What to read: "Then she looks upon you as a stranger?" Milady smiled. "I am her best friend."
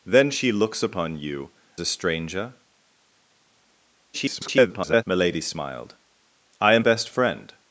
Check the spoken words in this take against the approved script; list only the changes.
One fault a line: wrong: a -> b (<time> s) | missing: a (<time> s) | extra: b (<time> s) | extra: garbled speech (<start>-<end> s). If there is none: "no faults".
missing: as (1.5 s)
extra: garbled speech (4.1-5.0 s)
missing: her (6.8 s)